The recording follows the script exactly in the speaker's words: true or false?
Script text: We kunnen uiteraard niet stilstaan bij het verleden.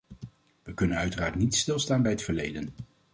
true